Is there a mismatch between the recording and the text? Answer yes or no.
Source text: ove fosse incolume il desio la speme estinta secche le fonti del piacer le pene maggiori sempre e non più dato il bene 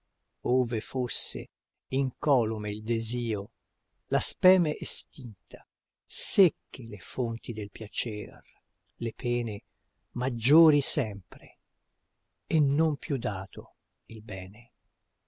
no